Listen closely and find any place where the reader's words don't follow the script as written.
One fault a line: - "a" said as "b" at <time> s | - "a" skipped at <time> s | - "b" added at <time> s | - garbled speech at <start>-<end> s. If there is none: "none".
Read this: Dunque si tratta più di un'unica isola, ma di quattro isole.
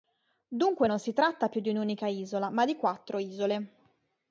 - "non" added at 0.8 s